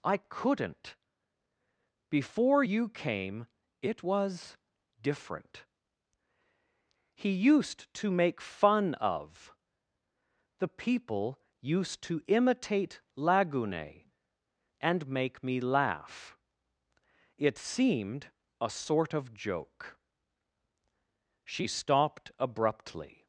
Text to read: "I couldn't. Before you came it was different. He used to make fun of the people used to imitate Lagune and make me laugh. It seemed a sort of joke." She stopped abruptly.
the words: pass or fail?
pass